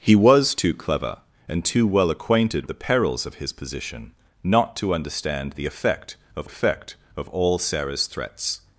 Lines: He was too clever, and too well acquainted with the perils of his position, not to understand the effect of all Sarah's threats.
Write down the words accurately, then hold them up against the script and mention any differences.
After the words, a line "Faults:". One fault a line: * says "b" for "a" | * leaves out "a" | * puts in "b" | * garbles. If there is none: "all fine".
He was too clever, and too well acquainted the perils of his position, not to understand the effect of effect of all Sarah's threats.
Faults:
* leaves out "with"
* puts in "effect of"